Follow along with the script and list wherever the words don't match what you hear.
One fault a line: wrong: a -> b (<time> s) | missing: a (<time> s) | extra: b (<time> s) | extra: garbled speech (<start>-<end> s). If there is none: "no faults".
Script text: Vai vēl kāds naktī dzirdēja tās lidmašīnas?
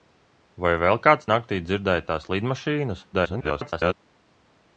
extra: garbled speech (3.1-3.9 s)